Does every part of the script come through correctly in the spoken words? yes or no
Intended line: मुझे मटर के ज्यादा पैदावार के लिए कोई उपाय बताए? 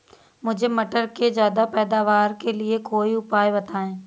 yes